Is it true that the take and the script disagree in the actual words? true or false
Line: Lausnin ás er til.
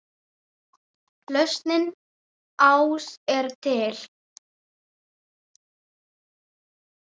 false